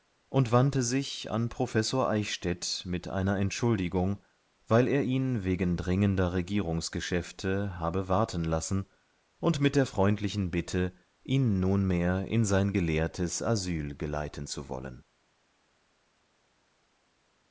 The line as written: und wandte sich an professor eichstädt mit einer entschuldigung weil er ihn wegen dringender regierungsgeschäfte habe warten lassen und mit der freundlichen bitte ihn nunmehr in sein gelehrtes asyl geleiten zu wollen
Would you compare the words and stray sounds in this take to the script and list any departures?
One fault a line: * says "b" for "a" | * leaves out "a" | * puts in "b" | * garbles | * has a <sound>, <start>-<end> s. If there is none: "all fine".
all fine